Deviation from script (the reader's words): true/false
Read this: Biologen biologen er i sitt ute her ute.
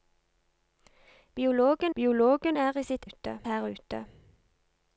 false